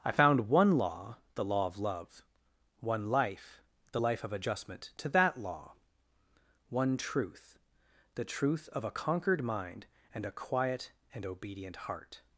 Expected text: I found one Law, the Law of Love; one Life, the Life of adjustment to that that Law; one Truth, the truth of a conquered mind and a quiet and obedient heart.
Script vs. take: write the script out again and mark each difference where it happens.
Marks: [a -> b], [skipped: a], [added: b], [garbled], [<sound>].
I found one Law, the Law of Love; one Life, the Life of adjustment to that [skipped: that] Law; one Truth, the truth of a conquered mind and a quiet and obedient heart.